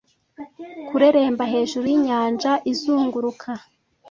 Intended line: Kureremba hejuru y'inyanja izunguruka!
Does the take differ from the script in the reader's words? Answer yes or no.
no